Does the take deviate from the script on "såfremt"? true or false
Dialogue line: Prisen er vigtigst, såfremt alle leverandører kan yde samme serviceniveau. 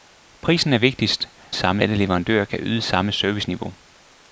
true